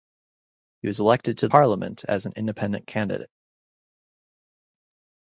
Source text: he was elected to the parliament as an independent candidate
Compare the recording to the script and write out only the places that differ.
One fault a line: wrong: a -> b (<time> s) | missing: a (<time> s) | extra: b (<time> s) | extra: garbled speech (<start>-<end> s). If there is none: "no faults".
missing: the (1.5 s)